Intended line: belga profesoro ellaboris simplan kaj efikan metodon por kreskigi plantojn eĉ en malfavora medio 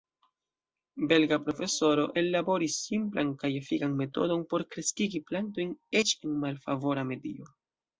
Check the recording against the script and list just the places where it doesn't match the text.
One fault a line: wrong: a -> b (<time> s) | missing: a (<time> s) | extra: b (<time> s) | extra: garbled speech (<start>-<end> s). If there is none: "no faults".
no faults